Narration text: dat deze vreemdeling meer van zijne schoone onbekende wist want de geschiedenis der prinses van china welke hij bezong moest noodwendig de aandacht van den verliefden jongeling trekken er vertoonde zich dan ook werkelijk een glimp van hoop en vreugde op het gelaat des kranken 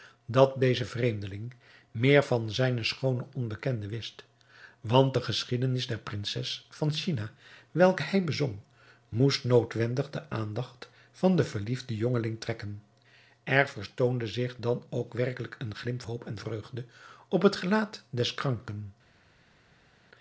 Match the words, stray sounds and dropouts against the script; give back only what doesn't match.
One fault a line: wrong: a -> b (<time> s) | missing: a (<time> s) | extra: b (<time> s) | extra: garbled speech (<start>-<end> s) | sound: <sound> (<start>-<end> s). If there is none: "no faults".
missing: van (16.0 s)